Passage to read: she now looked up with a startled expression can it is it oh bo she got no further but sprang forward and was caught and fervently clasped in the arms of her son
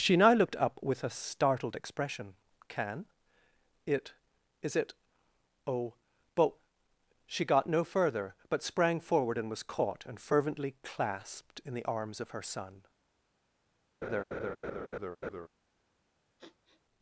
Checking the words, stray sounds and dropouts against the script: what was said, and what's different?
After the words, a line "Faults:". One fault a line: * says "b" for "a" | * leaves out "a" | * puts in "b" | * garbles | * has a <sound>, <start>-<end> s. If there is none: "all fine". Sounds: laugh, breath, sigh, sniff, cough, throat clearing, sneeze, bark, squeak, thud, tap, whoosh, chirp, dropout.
she now looked up with a startled expression can it is it oh but she got no further but sprang forward and was caught and fervently clasped in the arms of her son
Faults:
* says "but" for "bo"
* has a laugh, 14.0-15.5 s
* has a sniff, 16.4-16.8 s